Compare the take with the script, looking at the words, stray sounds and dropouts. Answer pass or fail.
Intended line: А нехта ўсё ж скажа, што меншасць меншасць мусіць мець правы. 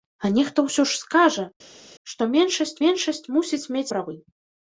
pass